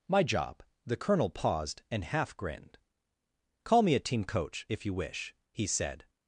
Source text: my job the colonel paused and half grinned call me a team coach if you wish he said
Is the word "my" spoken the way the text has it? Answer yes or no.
yes